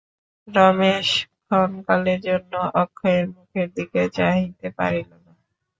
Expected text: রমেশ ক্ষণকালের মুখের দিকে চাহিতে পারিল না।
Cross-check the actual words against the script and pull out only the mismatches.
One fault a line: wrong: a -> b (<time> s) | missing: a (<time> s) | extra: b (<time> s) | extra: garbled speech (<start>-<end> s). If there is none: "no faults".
extra: জন্য অক্ষয়ের (2.3 s)